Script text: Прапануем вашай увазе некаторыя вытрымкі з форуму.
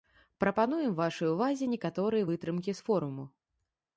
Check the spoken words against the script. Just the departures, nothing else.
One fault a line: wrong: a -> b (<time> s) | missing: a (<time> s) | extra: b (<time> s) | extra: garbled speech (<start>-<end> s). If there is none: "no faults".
no faults